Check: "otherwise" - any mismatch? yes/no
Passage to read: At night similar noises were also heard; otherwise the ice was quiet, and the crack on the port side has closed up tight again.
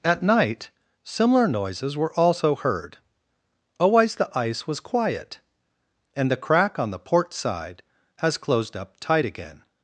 yes